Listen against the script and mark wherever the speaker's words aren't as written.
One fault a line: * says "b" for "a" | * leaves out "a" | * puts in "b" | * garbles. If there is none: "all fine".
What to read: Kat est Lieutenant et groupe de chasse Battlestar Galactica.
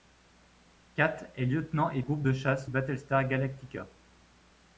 all fine